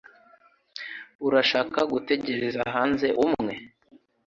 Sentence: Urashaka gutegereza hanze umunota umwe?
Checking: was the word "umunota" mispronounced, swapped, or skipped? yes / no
yes